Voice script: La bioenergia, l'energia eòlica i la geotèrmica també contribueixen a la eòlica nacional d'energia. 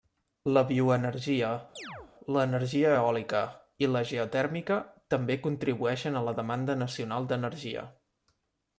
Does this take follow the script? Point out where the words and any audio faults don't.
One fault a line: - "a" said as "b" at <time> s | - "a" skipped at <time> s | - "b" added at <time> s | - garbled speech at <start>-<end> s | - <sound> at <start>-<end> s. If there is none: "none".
- chirp at 1.8-2.1 s
- "eòlica" said as "demanda" at 6.4 s